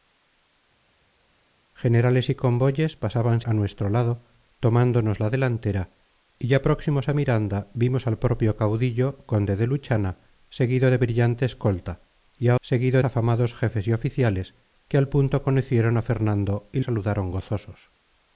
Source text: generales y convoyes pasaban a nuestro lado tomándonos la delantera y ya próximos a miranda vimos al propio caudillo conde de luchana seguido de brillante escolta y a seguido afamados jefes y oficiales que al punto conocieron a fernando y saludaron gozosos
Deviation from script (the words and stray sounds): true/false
false